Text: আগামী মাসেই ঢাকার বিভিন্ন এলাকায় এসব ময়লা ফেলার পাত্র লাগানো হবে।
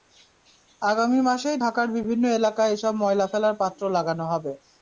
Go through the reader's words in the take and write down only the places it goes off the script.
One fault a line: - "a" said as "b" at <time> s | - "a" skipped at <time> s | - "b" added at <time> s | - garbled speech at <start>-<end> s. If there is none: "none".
none